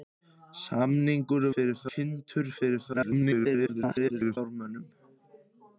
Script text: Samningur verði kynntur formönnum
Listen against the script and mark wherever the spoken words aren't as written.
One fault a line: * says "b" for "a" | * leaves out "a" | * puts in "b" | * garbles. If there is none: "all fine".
* says "formönnum" for "verði"
* garbles